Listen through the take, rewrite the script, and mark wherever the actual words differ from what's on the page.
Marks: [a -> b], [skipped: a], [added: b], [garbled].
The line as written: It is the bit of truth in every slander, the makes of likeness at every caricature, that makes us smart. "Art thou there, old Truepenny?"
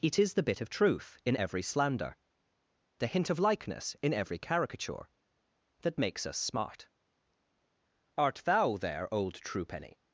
It is the bit of truth in every slander, the [makes -> hint] of likeness [at -> in] every caricature, that makes us smart. "Art thou there, old Truepenny?"